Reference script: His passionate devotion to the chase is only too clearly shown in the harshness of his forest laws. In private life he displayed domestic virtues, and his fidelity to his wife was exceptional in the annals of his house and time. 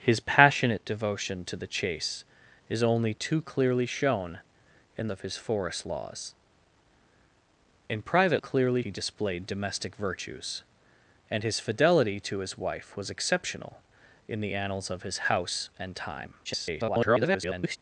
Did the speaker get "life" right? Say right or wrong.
wrong